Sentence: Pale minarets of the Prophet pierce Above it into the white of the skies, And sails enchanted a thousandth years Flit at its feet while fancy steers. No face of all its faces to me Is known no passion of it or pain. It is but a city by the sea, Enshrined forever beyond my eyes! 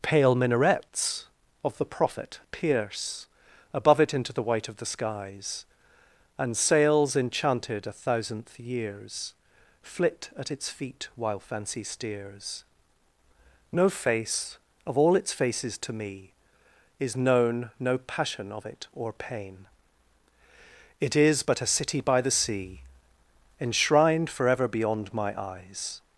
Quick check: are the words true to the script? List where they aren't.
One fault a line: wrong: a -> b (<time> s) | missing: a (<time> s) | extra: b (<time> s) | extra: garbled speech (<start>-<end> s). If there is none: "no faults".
no faults